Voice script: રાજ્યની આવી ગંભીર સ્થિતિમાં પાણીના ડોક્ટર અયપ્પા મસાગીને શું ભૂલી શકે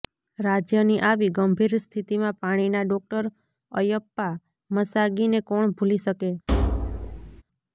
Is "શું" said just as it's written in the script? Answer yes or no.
no